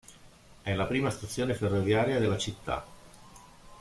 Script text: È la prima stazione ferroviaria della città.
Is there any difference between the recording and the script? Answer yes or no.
no